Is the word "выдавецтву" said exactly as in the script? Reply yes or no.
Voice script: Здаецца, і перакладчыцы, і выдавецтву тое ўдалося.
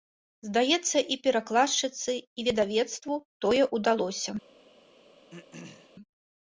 yes